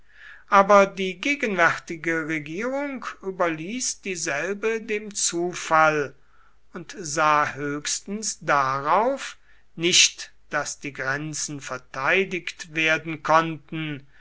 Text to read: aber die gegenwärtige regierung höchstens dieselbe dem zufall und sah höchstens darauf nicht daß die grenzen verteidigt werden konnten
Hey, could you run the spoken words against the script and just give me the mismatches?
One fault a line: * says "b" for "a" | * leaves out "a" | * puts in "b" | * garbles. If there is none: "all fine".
* says "überließ" for "höchstens"